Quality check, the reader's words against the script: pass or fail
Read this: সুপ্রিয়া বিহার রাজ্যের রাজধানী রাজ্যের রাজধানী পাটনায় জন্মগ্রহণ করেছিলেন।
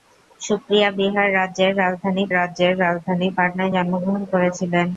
pass